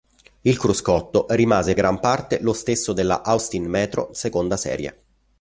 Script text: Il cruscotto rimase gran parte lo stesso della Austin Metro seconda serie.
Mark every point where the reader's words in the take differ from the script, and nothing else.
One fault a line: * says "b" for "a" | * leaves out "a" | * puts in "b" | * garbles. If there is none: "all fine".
all fine